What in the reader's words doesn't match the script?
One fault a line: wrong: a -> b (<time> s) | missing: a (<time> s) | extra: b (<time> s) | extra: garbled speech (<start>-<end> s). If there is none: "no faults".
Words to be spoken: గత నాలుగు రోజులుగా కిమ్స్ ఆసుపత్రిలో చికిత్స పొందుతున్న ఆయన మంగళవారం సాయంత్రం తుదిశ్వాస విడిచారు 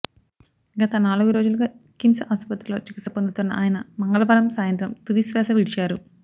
no faults